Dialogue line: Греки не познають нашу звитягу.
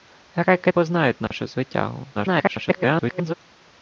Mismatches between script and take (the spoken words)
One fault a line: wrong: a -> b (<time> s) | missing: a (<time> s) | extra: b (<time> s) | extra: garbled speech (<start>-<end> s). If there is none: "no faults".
missing: не (0.7 s)
extra: garbled speech (2.1-3.3 s)